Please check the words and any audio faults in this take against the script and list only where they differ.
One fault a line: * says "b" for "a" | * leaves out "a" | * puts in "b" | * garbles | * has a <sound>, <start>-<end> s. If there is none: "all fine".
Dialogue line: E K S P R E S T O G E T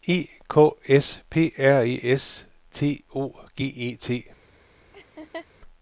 * has a laugh, 4.9-5.5 s